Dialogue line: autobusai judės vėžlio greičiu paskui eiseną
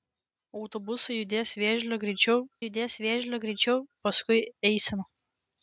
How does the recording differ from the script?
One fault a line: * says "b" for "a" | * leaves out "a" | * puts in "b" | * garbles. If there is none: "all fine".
* puts in "judės vėžlio greičiu"